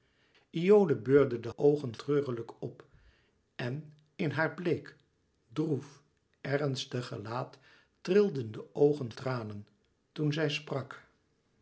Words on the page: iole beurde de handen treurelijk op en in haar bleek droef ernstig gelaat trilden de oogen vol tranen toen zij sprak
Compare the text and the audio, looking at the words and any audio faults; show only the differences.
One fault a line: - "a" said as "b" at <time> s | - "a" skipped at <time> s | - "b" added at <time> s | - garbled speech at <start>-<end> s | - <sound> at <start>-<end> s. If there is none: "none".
- "handen" said as "oogen" at 1.6 s
- "vol" skipped at 9.1 s